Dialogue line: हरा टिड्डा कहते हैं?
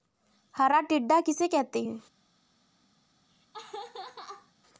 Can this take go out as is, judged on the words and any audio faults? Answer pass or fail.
fail